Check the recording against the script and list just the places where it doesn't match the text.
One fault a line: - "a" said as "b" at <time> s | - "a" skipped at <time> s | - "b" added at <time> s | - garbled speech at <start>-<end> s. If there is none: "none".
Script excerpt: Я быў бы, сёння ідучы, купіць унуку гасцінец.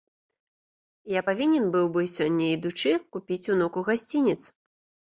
- "павінен" added at 1.3 s